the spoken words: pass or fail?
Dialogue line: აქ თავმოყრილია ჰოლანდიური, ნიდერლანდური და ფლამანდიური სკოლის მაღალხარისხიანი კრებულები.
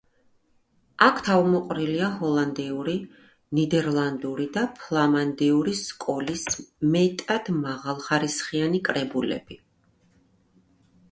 fail